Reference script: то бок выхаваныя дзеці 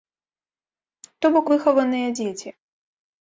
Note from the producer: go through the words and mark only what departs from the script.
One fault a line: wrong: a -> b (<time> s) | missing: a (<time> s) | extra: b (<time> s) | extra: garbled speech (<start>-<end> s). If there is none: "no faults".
no faults